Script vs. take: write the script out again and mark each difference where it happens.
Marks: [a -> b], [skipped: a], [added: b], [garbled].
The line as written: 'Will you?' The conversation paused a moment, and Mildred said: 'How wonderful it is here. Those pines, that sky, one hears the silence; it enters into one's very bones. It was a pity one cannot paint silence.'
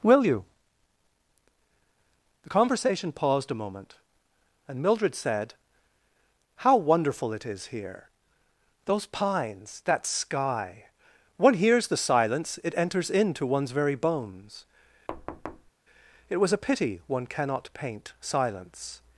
'Will you?' The conversation paused a moment, and Mildred said: 'How wonderful it is here. Those pines, that sky, one hears the silence; it enters into one's very bones. It was a pity one cannot paint silence.'